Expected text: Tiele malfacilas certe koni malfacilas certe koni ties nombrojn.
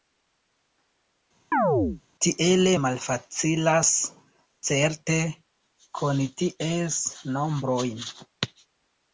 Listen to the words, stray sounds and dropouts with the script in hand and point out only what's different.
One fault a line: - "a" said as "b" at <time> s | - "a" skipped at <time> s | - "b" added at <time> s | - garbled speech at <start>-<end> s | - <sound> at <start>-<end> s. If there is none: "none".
- chirp at 1.5-2.0 s
- "malfacilas certe koni" skipped at 6.3 s